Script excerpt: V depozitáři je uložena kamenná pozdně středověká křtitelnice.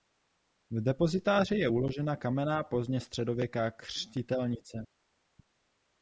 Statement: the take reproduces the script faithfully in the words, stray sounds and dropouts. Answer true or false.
true